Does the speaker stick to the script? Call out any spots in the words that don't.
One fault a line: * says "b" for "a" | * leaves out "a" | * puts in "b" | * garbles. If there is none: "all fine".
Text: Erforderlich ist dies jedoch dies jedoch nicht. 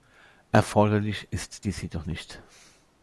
* leaves out "dies jedoch"